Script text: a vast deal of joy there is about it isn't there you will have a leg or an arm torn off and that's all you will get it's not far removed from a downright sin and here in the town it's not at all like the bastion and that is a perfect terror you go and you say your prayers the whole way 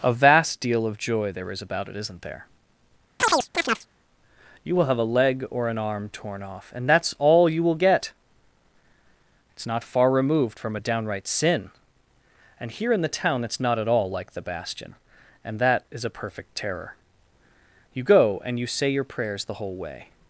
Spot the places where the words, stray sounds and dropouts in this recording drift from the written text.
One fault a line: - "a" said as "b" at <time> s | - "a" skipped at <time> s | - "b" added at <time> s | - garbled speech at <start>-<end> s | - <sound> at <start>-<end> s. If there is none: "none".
- chirp at 3.2-3.9 s